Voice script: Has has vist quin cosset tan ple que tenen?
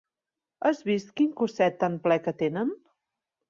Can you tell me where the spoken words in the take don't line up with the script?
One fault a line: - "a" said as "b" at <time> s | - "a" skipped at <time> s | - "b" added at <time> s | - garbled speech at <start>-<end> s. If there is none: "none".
- "has" skipped at 0.8 s